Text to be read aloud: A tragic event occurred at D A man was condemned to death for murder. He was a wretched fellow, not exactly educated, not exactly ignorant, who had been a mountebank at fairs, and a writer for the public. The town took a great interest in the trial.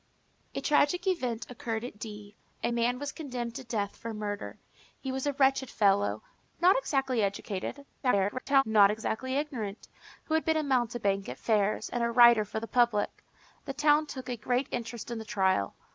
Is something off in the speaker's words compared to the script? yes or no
yes